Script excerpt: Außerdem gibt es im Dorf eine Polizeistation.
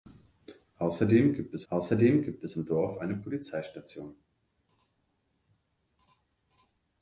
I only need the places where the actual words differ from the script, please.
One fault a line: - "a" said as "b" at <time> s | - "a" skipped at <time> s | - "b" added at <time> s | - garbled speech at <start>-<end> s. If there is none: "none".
- "außerdem gibt es" added at 1.7 s